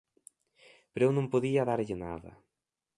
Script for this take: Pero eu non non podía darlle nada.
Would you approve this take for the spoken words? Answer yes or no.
no